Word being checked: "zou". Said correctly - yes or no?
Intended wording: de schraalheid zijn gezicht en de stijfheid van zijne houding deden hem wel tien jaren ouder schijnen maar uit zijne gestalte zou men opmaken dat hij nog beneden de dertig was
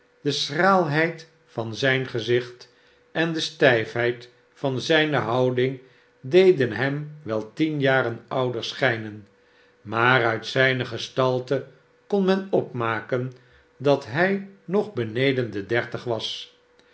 no